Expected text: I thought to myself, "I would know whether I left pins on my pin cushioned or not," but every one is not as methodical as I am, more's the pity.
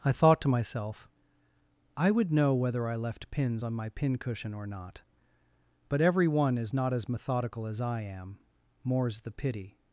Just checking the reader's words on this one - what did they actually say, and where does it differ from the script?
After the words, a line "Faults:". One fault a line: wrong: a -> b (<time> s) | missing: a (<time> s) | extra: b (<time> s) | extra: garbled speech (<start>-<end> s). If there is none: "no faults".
I thought to myself, "I would know whether I left pins on my pin cushion or not," but every one is not as methodical as I am, more's the pity.
Faults:
wrong: cushioned -> cushion (4.2 s)